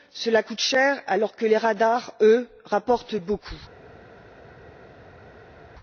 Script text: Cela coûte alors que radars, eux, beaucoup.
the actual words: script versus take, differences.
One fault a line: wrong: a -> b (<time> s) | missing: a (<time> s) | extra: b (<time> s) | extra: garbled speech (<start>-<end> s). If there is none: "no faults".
extra: cher (0.6 s)
extra: les (1.4 s)
extra: rapportent (2.6 s)